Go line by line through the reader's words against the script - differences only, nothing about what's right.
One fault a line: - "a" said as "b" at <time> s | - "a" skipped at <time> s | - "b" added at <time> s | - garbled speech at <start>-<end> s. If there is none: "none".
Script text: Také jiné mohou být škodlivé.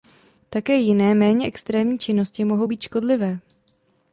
- "méně extrémní činnosti" added at 1.1 s